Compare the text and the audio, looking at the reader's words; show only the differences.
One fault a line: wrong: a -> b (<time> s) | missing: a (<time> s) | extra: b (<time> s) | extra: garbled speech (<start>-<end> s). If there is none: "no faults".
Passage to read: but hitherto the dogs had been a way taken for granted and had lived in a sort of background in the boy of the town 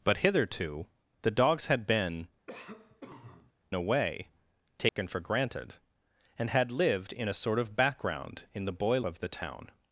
no faults